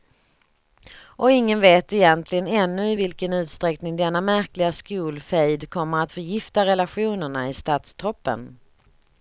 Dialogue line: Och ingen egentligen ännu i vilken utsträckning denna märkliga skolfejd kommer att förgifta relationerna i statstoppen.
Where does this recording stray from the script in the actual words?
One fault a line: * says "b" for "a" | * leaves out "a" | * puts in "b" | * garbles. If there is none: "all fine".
* puts in "vet"